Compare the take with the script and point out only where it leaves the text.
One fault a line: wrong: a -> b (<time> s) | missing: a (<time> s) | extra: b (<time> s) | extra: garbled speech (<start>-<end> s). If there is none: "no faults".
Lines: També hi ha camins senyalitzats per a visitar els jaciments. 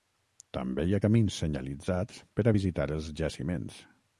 no faults